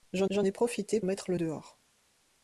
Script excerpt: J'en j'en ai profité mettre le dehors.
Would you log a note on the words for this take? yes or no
no